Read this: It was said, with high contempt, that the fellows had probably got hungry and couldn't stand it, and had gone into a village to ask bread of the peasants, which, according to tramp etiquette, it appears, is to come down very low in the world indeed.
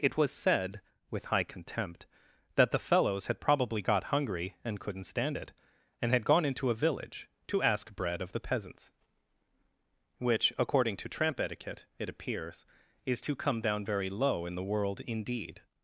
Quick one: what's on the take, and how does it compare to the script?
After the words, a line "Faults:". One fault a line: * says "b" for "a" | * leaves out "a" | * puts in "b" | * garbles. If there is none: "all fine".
It was said, with high contempt, that the fellows had probably got hungry and couldn't stand it, and had gone into a village to ask bread of the peasants, which, according to tramp etiquette, it appears, is to come down very low in the world indeed.
Faults:
all fine